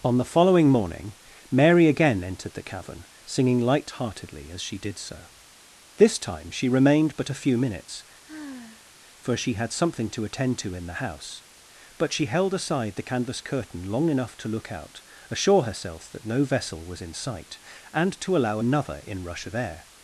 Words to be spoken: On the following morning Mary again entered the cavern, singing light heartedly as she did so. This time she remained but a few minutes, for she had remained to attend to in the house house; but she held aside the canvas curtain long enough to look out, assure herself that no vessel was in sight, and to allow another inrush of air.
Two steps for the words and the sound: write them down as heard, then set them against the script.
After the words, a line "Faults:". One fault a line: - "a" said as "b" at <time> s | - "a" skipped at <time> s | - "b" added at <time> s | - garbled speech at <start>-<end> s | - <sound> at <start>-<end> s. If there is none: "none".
On the following morning Mary again entered the cavern, singing light heartedly as she did so. This time she remained but a few minutes, for she had something to attend to in the house; but she held aside the canvas curtain long enough to look out, assure herself that no vessel was in sight, and to allow another inrush of air.
Faults:
- sigh at 8.2-9.0 s
- "remained" said as "something" at 9.7 s
- "house" skipped at 11.4 s